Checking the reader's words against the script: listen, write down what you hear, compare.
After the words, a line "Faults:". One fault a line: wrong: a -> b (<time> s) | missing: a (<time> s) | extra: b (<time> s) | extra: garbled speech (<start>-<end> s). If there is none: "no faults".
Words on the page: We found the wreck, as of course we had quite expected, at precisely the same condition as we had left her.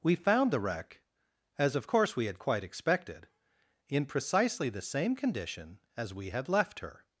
We found the wreck, as of course we had quite expected, in precisely the same condition as we had left her.
Faults:
wrong: at -> in (3.9 s)